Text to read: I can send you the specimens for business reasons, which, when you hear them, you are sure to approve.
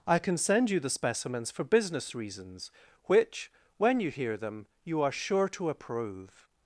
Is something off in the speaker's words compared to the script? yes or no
no